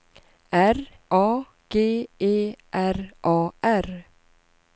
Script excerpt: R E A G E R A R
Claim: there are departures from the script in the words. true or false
true